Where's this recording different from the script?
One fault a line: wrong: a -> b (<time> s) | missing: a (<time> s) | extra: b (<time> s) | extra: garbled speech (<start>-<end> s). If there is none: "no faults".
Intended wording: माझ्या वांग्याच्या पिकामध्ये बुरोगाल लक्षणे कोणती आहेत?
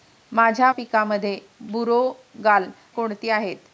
missing: वांग्याच्या (0.7 s)
missing: लक्षणे (2.7 s)